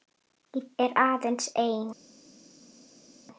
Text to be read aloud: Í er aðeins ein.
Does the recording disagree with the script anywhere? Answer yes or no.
no